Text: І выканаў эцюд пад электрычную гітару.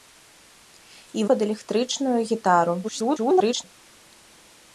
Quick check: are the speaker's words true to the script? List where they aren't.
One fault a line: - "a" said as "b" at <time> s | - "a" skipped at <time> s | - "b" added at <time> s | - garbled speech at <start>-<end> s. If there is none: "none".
- "выканаў эцюд" skipped at 1.2 s
- garbled speech at 2.8-3.6 s